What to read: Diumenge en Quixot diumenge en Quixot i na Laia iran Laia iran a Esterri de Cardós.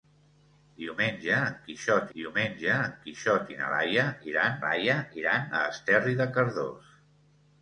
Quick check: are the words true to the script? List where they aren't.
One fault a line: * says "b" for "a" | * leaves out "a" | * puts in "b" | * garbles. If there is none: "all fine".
all fine